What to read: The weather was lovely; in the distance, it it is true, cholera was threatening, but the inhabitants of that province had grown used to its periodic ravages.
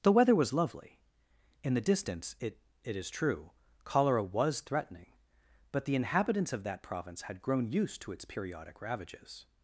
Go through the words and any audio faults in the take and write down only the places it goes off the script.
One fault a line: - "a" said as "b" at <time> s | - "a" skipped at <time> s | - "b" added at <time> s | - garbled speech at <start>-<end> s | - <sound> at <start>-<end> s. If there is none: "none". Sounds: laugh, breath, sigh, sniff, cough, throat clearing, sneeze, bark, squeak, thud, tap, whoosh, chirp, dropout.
none